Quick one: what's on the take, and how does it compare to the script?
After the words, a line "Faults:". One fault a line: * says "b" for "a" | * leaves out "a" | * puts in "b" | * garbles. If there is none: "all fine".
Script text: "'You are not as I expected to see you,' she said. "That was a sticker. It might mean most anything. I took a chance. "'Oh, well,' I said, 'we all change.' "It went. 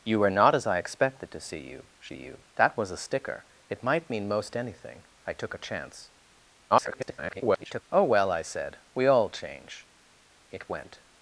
"'You are not as I expected to see you,' she you. "That was a sticker. It might mean most anything. I took a chance. [garbled] "'Oh, well,' I said, 'we all change.' "It went.
Faults:
* says "you" for "said"
* garbles